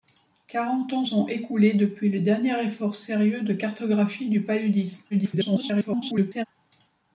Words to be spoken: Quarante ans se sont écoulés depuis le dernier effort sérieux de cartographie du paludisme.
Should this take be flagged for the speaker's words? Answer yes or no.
yes